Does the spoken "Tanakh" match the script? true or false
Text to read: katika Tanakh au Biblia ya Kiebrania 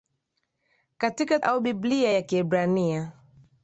false